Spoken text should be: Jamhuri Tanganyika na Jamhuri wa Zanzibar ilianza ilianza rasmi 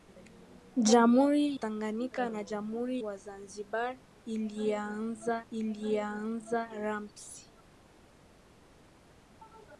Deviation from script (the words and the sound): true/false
false